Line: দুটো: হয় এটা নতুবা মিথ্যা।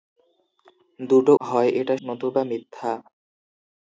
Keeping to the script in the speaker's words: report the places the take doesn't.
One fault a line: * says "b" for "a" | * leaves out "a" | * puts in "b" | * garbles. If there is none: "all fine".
all fine